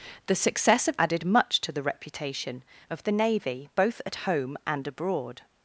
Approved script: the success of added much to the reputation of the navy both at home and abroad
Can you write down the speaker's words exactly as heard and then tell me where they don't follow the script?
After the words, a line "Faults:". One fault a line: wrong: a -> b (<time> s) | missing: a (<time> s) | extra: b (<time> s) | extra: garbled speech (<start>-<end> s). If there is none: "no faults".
the success of added much to the reputation of the navy both at home and abroad
Faults:
no faults